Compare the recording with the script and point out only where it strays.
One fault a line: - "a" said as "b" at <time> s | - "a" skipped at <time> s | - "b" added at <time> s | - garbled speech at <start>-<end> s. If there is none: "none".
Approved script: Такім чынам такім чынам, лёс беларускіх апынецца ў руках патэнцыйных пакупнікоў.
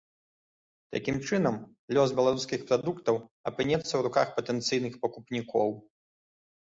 - "такім чынам" skipped at 1.6 s
- "прадуктаў" added at 2.7 s